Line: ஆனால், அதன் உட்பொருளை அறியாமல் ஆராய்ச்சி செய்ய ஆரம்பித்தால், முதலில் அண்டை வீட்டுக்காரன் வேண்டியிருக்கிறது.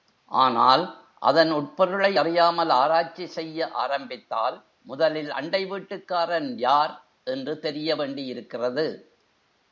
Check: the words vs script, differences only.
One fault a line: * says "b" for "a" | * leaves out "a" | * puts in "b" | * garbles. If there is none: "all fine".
* puts in "யார் என்று தெரிய"